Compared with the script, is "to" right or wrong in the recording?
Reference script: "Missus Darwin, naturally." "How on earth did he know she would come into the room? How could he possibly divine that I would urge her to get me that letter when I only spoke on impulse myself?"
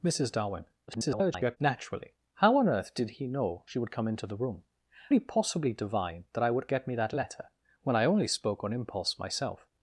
wrong